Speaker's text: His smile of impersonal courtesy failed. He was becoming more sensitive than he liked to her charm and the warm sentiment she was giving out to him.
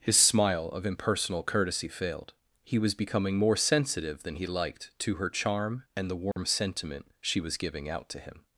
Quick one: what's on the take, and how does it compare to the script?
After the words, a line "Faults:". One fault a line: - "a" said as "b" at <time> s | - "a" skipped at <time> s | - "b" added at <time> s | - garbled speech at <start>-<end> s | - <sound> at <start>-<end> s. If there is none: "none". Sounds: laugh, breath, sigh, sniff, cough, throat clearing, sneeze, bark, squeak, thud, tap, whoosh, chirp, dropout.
His smile of impersonal courtesy failed. He was becoming more sensitive than he liked to her charm and the warm sentiment she was giving out to him.
Faults:
- dropout at 6.3-6.4 s